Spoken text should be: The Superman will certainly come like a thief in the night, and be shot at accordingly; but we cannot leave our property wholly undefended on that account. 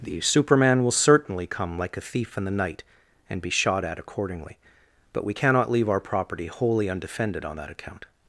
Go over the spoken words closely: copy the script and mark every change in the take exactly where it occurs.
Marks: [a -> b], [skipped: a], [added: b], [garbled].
The Superman will certainly come like a thief in the night, and be shot at accordingly; but we cannot leave our property wholly undefended on that account.